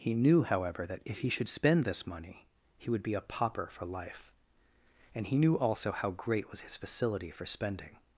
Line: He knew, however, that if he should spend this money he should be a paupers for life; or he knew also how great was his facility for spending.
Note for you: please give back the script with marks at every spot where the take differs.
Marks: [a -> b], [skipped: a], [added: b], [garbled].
He knew, however, that if he should spend this money he [should -> would] be a [paupers -> pauper] for life; [or -> and] he knew also how great was his facility for spending.